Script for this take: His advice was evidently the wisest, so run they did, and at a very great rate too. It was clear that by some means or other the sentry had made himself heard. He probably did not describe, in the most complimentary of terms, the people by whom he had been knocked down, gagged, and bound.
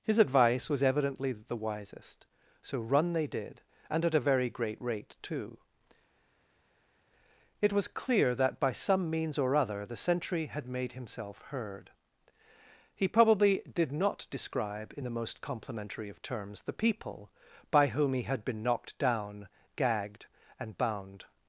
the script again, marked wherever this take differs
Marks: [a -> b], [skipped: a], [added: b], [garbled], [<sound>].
His advice was evidently the wisest, so run they did, and at a very great rate too. It was clear that by some means or other the sentry had made himself heard. He probably did not describe, in the most complimentary of terms, the people by whom he had been knocked down, gagged, and bound.